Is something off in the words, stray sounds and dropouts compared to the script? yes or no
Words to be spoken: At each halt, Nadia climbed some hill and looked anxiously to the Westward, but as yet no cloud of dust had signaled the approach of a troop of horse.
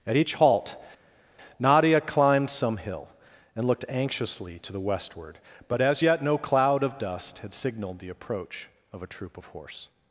no